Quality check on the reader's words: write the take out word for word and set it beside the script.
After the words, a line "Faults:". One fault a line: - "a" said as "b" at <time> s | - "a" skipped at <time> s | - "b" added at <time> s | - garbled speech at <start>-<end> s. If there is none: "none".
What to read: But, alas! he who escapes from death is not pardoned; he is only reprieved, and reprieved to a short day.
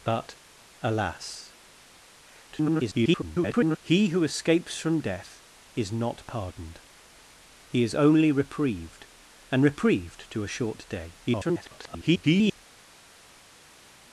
But, alas! [garbled] he who escapes from death is not pardoned; he is only reprieved, and reprieved to a short day. [garbled]
Faults:
- garbled speech at 2.5-3.8 s
- garbled speech at 11.3-12.6 s